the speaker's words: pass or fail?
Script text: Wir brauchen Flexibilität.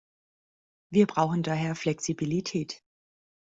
fail